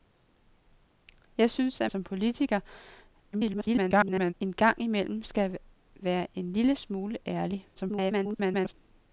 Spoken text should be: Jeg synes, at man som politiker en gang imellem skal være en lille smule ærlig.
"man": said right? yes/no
no